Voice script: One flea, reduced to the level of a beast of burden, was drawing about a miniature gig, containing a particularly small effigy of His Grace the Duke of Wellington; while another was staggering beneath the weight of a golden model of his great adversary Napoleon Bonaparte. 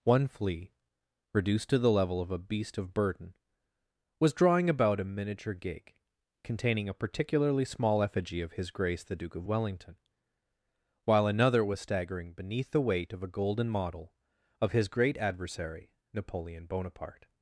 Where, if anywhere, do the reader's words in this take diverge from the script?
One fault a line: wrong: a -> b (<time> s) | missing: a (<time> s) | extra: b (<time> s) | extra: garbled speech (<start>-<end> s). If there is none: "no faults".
no faults